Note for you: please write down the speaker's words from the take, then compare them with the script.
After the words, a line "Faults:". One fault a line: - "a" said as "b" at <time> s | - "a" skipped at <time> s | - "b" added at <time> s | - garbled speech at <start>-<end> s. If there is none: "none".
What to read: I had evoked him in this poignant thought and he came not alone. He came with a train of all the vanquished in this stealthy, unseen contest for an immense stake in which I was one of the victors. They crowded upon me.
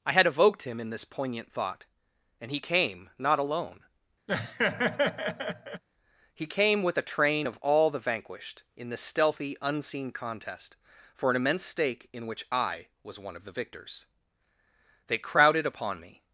I had evoked him in this poignant thought and he came not alone. He came with a train of all the vanquished in this stealthy, unseen contest for an immense stake in which I was one of the victors. They crowded upon me.
Faults:
none